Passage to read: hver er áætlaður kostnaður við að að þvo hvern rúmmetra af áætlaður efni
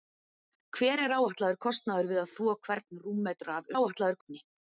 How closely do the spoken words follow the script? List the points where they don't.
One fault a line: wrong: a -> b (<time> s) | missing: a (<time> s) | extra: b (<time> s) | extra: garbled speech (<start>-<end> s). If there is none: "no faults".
no faults